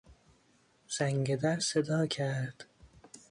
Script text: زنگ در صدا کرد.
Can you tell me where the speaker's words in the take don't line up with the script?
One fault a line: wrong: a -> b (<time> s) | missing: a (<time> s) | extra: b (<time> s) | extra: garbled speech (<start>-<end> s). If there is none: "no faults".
no faults